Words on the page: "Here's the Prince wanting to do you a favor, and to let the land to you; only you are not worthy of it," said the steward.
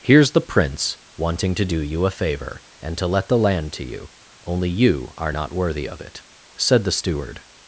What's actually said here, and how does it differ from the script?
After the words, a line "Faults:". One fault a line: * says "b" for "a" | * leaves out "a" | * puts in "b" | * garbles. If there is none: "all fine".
"Here's the Prince wanting to do you a favor, and to let the land to you; only you are not worthy of it," said the steward.
Faults:
all fine